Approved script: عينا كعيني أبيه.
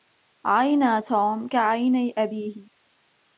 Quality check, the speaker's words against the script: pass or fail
fail